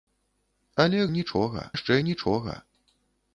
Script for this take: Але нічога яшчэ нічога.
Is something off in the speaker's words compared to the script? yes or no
no